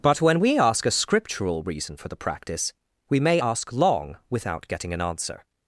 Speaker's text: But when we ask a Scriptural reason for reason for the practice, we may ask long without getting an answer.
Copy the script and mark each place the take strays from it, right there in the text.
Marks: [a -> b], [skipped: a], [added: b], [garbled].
But when we ask a Scriptural reason for [skipped: reason for] the practice, we may ask long without getting an answer.